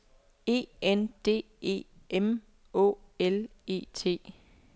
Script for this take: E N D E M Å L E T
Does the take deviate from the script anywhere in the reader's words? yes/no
no